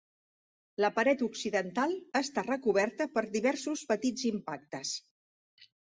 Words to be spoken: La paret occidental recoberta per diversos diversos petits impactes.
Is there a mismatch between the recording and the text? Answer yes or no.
yes